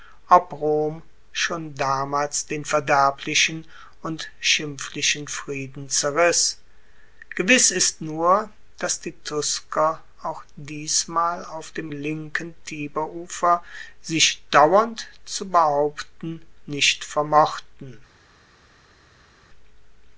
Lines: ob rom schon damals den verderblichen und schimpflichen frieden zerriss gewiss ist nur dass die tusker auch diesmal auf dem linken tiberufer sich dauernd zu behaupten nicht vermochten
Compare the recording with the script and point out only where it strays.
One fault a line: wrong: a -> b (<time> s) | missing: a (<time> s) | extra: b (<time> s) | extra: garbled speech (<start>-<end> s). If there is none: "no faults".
no faults